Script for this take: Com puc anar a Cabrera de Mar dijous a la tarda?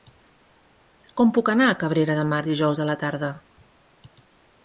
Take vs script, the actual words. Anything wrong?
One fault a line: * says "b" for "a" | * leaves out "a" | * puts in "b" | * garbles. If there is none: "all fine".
all fine